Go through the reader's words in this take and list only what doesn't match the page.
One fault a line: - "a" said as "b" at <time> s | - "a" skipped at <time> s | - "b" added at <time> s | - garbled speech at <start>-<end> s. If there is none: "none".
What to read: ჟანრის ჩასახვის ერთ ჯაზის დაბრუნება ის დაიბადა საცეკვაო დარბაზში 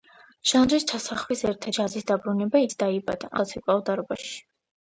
none